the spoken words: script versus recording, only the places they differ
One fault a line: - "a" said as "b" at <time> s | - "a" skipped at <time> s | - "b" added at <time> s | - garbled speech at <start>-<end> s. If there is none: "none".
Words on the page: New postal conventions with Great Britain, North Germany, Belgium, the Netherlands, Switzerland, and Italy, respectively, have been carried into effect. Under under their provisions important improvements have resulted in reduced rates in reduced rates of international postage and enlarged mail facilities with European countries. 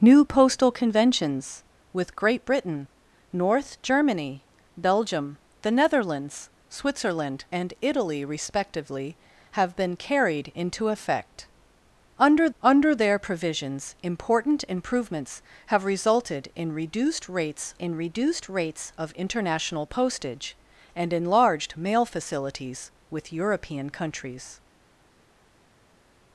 none